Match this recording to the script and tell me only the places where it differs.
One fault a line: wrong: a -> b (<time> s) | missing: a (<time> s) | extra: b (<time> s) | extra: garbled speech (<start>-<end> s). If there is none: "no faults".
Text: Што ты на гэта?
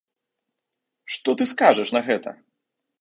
extra: скажаш (1.5 s)